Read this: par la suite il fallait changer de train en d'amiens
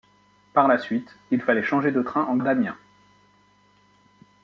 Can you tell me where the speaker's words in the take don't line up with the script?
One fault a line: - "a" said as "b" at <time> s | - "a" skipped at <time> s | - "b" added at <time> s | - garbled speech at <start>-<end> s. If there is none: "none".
none